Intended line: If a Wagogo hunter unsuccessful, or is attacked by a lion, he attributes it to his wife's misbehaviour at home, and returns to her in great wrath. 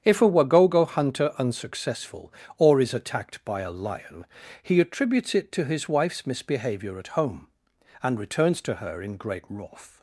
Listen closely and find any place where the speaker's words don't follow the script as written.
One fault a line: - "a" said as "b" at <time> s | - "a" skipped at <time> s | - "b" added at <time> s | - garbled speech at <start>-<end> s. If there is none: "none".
none